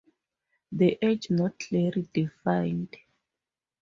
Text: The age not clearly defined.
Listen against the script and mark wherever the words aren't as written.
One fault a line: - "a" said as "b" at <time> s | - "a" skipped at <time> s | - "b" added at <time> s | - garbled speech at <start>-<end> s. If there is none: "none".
none